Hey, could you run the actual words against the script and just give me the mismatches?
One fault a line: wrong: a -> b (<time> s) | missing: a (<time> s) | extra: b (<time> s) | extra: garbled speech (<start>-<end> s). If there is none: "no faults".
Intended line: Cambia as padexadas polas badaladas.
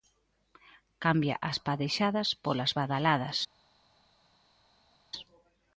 no faults